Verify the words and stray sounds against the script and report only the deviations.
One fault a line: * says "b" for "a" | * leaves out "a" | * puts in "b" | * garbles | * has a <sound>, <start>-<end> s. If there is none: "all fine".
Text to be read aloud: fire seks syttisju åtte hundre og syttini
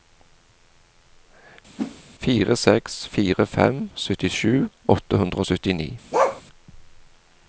* has a whoosh, 1.8-2.0 s
* puts in "fire fem"
* has a bark, 6.1-6.4 s